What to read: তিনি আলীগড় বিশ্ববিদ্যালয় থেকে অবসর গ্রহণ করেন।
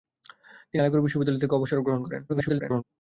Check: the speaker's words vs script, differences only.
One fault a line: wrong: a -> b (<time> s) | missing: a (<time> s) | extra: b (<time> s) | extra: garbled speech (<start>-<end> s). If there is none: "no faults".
extra: garbled speech (2.3-2.8 s)